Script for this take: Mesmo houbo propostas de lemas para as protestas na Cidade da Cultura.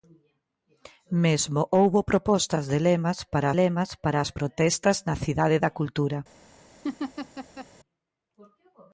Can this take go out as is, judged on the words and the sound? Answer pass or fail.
fail